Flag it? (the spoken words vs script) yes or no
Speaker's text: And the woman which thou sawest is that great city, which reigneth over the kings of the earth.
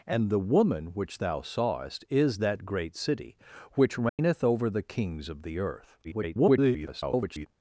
yes